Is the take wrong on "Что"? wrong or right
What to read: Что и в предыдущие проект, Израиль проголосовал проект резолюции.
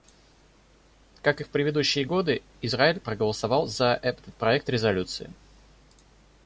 wrong